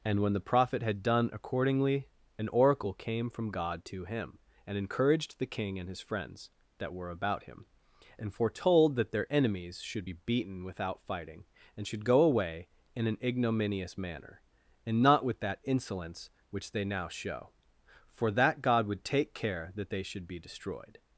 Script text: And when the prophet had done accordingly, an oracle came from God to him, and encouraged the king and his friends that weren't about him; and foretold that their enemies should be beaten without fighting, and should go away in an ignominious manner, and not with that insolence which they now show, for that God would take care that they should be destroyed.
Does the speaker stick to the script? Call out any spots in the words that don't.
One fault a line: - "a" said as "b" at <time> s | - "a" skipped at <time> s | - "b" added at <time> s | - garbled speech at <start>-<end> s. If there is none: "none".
- "weren't" said as "were" at 6.9 s